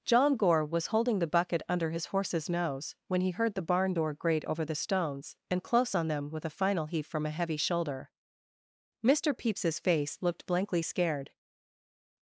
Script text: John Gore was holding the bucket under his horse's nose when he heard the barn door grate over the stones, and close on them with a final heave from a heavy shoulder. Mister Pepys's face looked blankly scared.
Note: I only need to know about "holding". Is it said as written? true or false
true